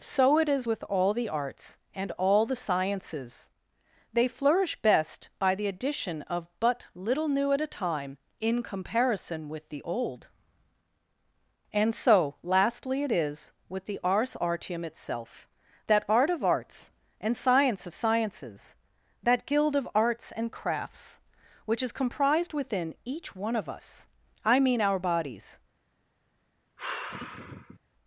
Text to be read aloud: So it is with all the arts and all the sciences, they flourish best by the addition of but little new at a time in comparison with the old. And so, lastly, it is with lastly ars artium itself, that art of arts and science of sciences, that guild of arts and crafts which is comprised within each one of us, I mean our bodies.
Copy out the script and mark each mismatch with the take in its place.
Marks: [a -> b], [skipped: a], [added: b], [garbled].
So it is with all the arts and all the sciences, they flourish best by the addition of but little new at a time in comparison with the old. And so, lastly, it is with [lastly -> the] ars artium itself, that art of arts and science of sciences, that guild of arts and crafts which is comprised within each one of us, I mean our bodies.